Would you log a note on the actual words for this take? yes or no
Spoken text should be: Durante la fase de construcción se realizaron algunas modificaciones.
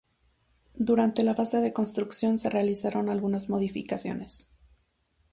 no